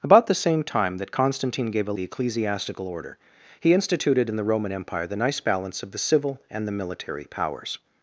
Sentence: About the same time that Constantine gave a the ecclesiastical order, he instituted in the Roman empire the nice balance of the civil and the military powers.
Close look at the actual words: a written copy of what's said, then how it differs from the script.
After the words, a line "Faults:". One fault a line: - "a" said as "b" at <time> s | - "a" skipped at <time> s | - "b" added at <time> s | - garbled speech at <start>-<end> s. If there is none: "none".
About the same time that Constantine gave a the ecclesiastical order, he instituted in the Roman empire the nice balance of the civil and the military powers.
Faults:
none